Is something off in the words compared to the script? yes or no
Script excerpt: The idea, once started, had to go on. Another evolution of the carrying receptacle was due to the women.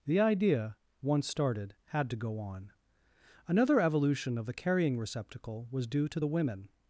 no